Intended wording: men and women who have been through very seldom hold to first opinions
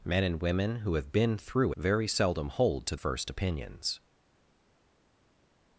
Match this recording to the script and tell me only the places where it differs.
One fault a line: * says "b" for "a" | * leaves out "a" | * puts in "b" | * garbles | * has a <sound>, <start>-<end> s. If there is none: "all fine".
all fine